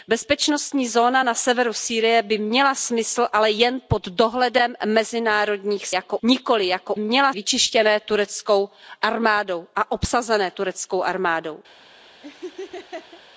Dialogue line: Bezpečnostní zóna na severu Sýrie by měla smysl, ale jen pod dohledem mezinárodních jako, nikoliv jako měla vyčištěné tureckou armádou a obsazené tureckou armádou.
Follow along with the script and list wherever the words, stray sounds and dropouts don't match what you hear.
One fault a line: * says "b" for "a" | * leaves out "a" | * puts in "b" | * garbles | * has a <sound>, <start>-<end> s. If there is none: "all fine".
* has a laugh, 12.2-13.2 s